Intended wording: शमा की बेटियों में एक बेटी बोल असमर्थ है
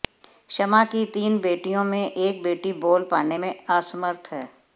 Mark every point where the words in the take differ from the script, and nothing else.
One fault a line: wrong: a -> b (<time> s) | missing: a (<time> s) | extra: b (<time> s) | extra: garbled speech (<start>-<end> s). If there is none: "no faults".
extra: तीन (1.1 s)
extra: पाने में (3.1 s)